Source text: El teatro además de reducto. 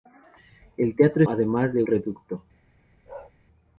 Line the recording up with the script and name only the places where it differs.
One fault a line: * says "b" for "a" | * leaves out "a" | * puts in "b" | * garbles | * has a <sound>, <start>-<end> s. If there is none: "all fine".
* has a bark, 3.1-3.3 s